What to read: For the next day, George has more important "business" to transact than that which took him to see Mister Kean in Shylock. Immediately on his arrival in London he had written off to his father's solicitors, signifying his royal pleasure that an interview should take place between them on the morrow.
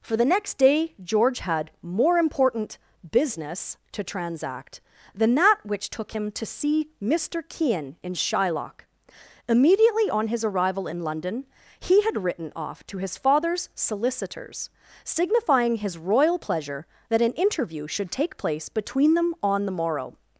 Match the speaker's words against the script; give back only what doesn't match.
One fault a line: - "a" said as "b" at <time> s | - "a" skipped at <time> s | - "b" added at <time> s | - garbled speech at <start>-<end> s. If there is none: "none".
- "has" said as "had" at 1.4 s